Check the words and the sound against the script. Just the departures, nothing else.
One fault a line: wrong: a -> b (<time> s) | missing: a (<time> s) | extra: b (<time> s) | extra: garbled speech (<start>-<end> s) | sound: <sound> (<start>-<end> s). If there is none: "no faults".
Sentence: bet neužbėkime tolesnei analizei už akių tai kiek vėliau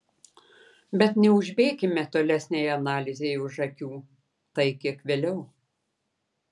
no faults